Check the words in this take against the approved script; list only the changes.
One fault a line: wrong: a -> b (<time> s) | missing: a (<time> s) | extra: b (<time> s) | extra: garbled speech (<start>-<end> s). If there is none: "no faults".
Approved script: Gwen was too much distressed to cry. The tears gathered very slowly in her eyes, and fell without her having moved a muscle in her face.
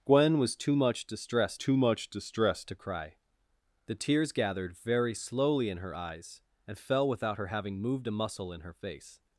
extra: too much distressed (1.5 s)